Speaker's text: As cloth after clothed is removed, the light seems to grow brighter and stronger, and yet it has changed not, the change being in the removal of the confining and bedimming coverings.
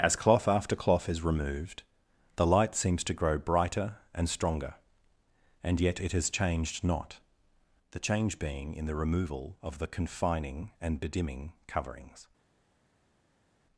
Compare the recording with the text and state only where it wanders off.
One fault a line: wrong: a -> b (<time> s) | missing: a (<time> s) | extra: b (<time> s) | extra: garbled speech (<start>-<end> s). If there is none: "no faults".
wrong: clothed -> cloth (0.8 s)